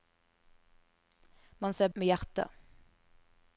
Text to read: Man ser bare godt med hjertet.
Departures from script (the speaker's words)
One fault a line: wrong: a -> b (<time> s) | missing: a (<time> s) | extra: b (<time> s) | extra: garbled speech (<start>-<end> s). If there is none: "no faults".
missing: bare godt (1.9 s)